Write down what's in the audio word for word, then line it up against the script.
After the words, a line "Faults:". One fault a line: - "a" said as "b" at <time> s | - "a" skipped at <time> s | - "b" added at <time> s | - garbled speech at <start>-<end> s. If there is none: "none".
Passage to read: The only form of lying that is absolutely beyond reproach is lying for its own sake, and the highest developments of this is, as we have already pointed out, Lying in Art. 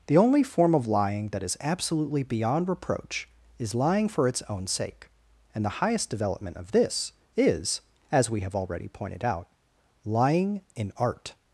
The only form of lying that is absolutely beyond reproach is lying for its own sake, and the highest development of this is, as we have already pointed out, Lying in Art.
Faults:
- "developments" said as "development" at 6.1 s